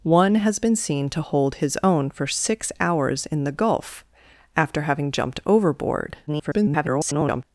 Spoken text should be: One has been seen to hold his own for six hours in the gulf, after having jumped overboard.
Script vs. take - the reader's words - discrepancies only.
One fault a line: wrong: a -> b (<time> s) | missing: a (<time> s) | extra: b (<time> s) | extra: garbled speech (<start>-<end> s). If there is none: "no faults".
extra: garbled speech (6.3-7.4 s)